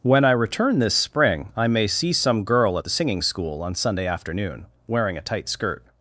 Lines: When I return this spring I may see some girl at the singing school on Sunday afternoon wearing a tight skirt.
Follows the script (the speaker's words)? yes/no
yes